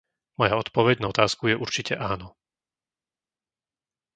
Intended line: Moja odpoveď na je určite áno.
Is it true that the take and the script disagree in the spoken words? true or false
true